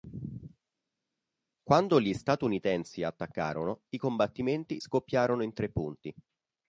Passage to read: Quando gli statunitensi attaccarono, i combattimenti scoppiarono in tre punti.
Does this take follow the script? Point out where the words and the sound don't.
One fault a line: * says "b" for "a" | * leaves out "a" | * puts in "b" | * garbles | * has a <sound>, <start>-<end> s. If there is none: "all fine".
all fine